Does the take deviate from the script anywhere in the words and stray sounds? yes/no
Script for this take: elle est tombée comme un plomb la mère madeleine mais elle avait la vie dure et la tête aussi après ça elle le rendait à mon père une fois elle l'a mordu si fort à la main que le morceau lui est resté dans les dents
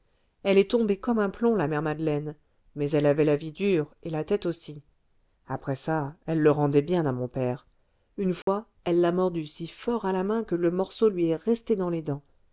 yes